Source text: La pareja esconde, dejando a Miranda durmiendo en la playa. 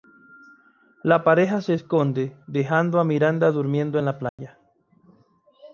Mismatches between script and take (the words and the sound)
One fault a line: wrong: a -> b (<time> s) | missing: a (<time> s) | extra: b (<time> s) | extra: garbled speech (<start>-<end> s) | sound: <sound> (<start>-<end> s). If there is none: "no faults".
extra: se (1.6 s)
sound: dropout (4.3-4.4 s)